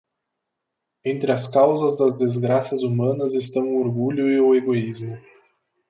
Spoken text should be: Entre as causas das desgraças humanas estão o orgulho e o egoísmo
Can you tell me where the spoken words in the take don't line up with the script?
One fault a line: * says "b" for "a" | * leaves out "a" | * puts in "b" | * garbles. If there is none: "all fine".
all fine